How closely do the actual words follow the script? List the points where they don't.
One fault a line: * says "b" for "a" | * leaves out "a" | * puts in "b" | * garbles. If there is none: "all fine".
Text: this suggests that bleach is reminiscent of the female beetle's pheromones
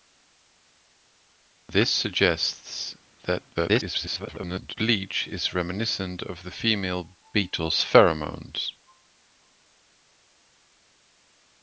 * garbles